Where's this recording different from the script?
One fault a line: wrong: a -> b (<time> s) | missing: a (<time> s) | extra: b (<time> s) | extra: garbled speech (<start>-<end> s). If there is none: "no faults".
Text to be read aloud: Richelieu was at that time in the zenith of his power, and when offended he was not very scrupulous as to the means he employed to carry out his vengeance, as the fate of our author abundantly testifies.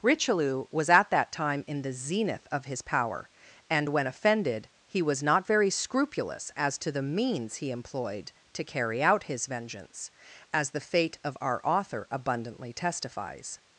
no faults